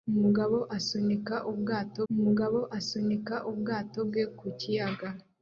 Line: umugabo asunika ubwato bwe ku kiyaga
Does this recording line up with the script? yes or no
no